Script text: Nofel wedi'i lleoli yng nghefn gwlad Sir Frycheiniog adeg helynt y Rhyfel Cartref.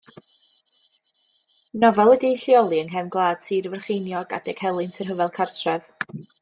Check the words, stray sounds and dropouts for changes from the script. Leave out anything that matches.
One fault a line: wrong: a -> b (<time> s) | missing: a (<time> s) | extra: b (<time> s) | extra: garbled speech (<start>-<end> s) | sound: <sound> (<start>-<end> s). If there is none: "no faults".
no faults